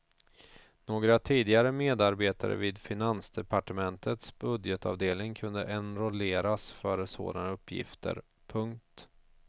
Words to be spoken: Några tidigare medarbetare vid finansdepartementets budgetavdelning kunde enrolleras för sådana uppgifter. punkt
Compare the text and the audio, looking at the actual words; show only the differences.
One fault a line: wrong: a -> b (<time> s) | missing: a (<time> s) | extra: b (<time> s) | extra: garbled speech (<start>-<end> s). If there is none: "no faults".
no faults